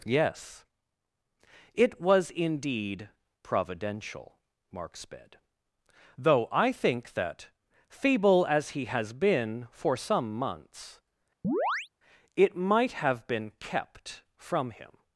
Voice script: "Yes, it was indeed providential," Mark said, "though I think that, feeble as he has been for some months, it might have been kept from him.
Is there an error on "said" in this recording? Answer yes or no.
yes